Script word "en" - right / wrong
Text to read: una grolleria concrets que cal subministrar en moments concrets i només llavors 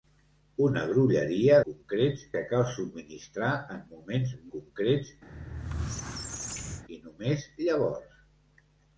right